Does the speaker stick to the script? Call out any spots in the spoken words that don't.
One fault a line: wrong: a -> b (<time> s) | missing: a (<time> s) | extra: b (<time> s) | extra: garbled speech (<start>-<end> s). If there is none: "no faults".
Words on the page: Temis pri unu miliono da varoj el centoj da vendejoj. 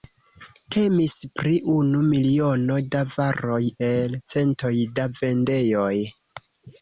no faults